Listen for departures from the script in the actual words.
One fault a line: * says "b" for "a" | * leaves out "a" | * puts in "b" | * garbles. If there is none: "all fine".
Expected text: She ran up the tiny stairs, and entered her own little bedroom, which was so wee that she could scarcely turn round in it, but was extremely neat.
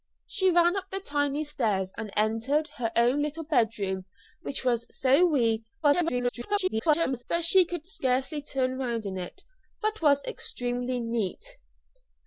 * garbles